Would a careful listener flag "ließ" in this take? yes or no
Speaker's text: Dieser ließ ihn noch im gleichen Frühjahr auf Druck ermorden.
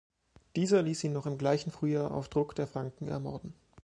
no